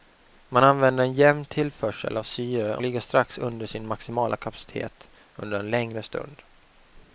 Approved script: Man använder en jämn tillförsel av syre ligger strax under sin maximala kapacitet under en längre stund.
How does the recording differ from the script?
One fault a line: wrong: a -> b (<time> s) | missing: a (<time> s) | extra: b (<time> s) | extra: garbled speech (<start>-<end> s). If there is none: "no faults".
no faults